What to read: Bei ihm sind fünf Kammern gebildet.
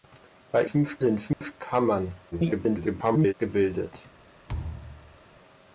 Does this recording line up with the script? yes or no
no